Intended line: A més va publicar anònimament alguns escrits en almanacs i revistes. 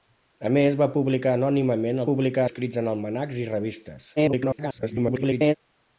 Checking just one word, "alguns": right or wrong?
wrong